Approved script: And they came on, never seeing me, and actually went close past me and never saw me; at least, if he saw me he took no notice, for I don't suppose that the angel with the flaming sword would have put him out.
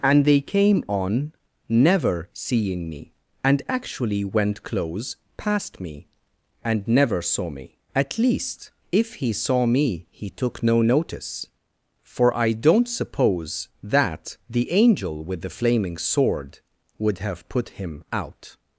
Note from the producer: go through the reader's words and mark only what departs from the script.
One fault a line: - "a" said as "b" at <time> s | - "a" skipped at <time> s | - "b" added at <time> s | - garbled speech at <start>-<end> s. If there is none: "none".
none